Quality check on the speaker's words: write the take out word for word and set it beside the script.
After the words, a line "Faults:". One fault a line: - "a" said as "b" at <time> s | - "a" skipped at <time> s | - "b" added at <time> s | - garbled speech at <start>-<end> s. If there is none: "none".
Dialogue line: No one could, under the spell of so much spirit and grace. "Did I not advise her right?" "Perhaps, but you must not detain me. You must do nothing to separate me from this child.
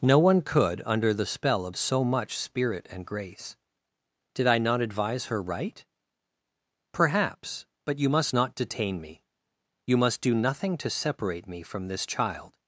No one could, under the spell of so much spirit and grace. "Did I not advise her right?" "Perhaps, but you must not detain me. You must do nothing to separate me from this child.
Faults:
none